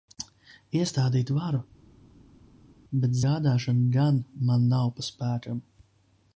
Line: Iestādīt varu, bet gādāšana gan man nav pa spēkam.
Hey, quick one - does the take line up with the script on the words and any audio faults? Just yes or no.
yes